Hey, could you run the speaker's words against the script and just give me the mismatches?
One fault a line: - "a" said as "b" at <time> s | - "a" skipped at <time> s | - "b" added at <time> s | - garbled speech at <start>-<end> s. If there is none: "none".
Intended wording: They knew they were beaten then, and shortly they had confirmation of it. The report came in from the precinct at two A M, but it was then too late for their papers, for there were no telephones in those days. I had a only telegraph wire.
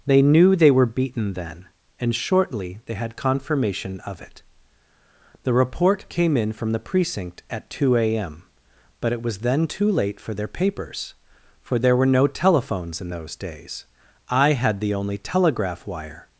- "a" said as "the" at 14.8 s